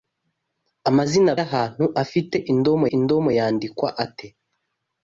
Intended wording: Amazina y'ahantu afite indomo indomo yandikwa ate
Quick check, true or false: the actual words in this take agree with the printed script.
true